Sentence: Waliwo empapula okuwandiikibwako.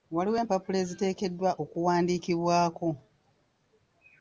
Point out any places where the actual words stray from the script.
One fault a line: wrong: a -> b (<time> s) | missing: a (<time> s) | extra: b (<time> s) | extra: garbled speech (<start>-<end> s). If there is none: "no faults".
extra: eziteekeddwa (0.8 s)